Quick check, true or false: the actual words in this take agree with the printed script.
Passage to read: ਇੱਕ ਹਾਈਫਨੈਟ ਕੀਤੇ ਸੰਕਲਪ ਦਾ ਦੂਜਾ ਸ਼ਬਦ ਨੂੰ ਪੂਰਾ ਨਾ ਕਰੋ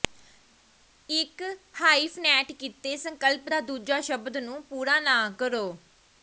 true